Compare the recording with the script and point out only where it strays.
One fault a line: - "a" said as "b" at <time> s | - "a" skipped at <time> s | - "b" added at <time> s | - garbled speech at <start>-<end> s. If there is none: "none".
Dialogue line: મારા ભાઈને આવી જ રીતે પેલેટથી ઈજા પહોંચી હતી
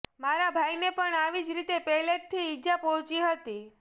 - "પણ" added at 0.9 s